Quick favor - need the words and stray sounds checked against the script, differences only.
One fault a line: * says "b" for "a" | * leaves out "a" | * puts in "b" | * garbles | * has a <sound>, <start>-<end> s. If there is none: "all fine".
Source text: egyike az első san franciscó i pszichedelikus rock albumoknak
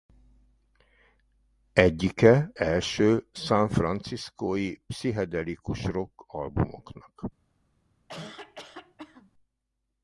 * leaves out "az"
* has a cough, 8.1-9.3 s